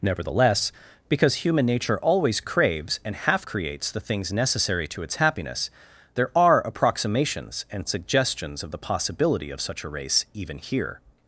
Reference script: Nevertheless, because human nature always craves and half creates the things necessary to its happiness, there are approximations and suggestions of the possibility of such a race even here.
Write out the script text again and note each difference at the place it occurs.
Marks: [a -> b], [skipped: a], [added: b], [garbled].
Nevertheless, because human nature always craves and half creates the things necessary to its happiness, there are approximations and suggestions of the possibility of such a race even here.